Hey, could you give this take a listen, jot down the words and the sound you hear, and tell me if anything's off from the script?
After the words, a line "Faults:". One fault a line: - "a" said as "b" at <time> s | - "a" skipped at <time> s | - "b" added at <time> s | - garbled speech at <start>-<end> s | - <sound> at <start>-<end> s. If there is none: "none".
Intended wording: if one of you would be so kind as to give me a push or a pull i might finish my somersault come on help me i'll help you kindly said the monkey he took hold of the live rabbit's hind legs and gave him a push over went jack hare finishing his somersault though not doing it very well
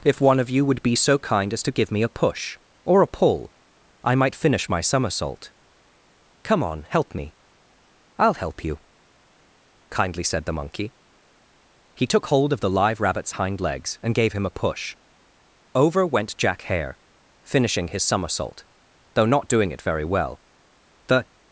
if one of you would be so kind as to give me a push or a pull i might finish my somersault come on help me i'll help you kindly said the monkey he took hold of the live rabbit's hind legs and gave him a push over went jack hare finishing his somersault though not doing it very well the
Faults:
- "the" added at 21.1 s